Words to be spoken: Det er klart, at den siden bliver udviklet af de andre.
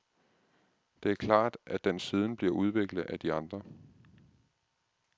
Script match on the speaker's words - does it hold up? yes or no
yes